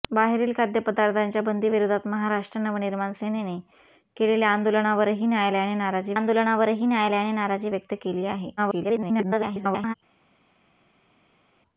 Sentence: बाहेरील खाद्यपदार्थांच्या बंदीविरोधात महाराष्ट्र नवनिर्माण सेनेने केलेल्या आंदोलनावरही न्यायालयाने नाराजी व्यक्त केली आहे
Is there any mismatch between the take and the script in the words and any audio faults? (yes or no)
yes